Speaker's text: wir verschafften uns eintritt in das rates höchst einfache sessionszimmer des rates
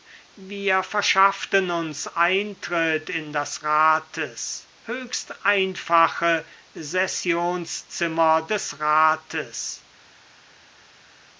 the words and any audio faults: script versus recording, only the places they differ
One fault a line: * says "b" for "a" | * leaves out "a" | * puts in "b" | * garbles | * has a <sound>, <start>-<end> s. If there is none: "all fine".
all fine